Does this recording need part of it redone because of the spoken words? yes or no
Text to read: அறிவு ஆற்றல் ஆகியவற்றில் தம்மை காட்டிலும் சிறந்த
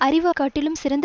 yes